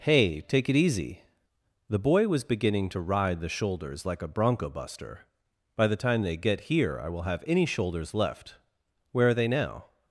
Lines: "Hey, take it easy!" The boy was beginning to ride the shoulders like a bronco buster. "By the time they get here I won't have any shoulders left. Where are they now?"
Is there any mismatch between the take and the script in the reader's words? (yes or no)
yes